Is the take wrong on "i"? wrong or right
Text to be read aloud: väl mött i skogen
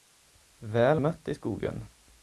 right